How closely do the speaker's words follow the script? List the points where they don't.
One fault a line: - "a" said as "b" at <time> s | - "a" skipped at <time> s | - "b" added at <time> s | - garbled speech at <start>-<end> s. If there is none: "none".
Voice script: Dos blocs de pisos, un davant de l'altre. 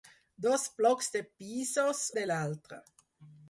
- "un davant" skipped at 2.0 s